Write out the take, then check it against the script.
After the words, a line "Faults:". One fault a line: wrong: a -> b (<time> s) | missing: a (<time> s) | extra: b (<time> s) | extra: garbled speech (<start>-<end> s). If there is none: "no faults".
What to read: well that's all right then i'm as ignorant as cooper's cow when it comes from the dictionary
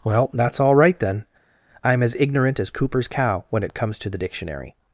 well that's all right then i'm as ignorant as cooper's cow when it comes to the dictionary
Faults:
wrong: from -> to (4.0 s)